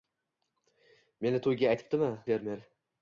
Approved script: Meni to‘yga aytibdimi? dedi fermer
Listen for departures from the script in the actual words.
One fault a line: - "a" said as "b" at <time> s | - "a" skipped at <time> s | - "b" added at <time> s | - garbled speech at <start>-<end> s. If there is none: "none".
- "dedi" skipped at 2.1 s